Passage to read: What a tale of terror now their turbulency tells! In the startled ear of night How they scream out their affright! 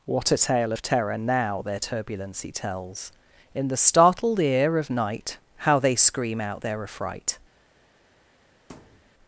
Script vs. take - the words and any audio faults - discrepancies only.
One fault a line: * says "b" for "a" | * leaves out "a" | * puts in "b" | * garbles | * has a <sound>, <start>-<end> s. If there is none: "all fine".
* has a thud, 8.7-9.1 s